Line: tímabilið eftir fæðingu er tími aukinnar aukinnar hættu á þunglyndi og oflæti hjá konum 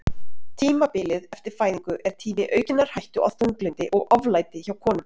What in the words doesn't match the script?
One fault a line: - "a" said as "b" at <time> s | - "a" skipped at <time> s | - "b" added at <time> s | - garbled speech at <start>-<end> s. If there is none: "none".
- "aukinnar" skipped at 2.9 s